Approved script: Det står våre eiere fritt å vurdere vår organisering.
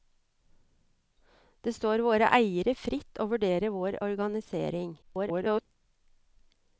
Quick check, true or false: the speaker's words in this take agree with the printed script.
false